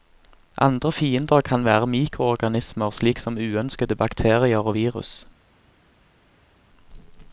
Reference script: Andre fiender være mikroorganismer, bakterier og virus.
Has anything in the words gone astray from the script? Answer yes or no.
yes